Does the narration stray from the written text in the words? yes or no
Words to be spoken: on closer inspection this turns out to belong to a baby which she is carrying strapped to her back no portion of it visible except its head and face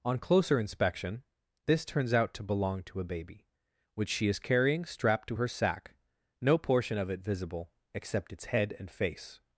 yes